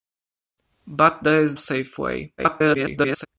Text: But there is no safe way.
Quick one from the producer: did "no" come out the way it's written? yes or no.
no